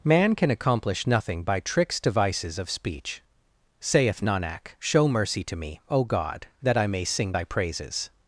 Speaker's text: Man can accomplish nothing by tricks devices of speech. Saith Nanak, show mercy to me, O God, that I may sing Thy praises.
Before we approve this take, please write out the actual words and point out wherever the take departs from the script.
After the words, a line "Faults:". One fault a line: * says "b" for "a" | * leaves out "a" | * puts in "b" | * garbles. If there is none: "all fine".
Man can accomplish nothing by tricks devices of speech. Saith Nanak, show mercy to me, O God, that I may sing Thy praises.
Faults:
all fine